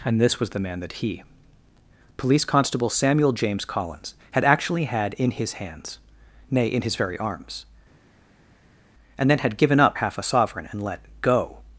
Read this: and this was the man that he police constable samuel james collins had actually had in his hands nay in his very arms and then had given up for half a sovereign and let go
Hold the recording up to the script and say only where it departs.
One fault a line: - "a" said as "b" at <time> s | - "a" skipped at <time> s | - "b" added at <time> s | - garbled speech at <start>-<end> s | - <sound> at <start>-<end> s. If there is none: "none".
- "for" skipped at 10.0 s